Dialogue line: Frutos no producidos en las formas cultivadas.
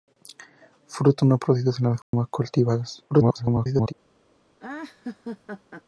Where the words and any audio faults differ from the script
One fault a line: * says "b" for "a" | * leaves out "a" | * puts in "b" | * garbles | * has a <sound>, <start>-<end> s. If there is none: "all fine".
* has a dropout, 2.0-2.1 s
* garbles
* has a laugh, 4.6-5.8 s